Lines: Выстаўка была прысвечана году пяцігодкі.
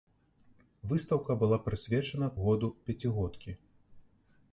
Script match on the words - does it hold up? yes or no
yes